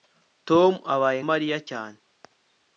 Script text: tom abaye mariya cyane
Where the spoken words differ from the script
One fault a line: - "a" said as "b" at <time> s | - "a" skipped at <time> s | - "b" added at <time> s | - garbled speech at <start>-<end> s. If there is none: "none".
none